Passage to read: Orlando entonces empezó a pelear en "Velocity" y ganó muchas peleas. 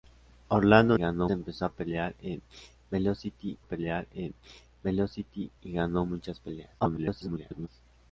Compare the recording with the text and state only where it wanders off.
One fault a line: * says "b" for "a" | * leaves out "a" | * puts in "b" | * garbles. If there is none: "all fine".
* says "ganó" for "entonces"
* puts in "pelear en Velocity"
* garbles